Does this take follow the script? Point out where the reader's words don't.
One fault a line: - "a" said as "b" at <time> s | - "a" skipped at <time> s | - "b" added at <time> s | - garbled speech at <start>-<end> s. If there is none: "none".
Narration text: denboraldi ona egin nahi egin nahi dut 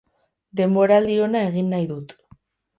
- "egin nahi" skipped at 1.9 s